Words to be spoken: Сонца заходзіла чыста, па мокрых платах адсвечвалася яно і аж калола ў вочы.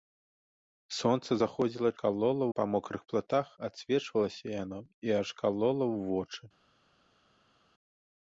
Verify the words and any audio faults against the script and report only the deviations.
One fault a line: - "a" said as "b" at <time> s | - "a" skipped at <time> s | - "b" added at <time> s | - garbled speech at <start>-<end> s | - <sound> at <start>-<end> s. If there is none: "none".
- "чыста" said as "калола" at 2.0 s